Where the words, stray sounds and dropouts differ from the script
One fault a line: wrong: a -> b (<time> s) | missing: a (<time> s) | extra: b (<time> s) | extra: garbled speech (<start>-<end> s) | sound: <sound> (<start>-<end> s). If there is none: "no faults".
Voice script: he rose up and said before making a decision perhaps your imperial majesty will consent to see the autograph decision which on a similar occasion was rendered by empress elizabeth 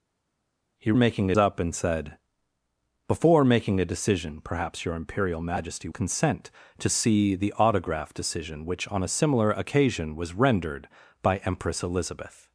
wrong: rose -> making (0.9 s)
missing: will (5.9 s)